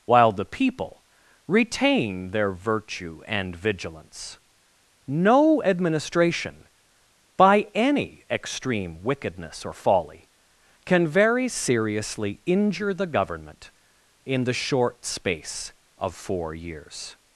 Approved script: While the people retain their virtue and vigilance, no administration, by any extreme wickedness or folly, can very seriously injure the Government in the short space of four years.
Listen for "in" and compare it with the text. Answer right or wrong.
right